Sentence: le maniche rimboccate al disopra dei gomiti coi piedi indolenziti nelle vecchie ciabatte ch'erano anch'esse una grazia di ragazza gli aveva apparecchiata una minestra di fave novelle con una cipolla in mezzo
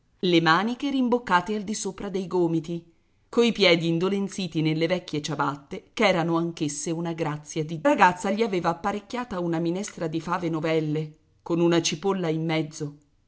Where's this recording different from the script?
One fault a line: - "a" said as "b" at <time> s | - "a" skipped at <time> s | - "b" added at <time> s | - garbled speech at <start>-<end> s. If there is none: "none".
none